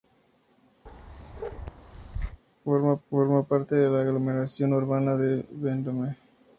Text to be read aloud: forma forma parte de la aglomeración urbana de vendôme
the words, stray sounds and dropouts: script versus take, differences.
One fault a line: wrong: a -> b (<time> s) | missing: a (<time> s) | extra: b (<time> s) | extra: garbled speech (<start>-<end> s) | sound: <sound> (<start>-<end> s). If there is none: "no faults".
sound: bark (0.9-2.4 s)